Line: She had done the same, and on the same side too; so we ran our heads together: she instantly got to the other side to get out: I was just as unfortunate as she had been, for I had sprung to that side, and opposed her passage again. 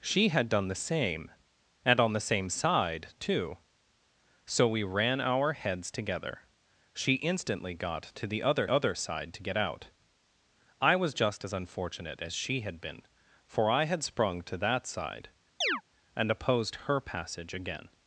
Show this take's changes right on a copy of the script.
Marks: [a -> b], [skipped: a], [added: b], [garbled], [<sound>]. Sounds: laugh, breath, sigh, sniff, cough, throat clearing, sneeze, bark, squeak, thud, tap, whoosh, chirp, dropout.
She had done the same, and on the same side too; so we ran our heads together: she instantly got to the other [added: other] side to get out: I was just as unfortunate as she had been, for I had sprung to that side, [chirp] and opposed her passage again.